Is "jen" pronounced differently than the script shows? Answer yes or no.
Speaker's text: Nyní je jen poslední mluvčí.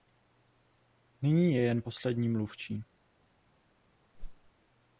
no